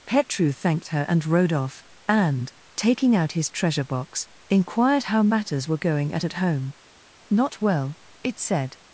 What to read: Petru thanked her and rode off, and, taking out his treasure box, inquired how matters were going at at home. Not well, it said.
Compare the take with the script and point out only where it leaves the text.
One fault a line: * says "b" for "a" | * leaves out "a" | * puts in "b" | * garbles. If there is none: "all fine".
all fine